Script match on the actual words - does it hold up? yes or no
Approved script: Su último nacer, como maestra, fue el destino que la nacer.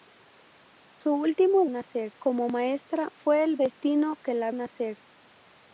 yes